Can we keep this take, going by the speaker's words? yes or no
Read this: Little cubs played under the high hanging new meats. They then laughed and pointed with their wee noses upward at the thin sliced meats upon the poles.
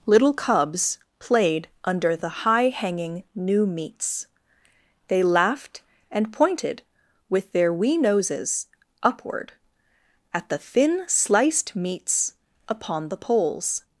no